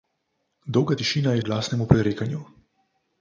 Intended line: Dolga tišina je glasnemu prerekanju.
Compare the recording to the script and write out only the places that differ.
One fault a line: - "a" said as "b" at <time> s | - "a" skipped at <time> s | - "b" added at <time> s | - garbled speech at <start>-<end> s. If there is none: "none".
none